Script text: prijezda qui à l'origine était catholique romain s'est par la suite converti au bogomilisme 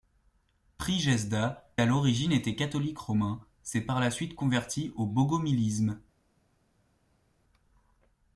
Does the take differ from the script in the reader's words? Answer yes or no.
yes